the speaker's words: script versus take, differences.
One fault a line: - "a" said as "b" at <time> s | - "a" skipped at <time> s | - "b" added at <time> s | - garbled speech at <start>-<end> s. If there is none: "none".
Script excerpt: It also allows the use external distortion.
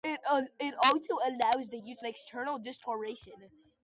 none